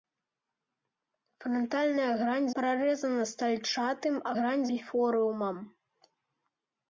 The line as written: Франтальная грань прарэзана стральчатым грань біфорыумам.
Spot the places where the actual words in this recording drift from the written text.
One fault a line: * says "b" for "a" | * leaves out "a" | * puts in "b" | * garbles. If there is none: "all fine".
all fine